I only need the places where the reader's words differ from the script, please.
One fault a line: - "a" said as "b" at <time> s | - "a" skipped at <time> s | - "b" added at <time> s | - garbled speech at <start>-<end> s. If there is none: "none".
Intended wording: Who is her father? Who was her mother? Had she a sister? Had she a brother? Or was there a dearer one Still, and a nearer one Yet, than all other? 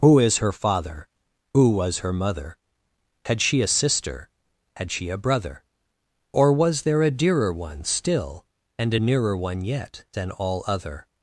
none